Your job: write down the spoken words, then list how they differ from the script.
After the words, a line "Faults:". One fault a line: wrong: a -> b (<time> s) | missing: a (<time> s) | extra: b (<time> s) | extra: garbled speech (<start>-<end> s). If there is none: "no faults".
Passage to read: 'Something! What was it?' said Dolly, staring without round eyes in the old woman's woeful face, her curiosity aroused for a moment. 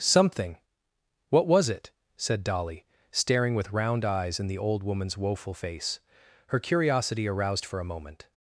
'Something! What was it?' said Dolly, staring with round eyes in the old woman's woeful face, her curiosity aroused for a moment.
Faults:
wrong: without -> with (3.5 s)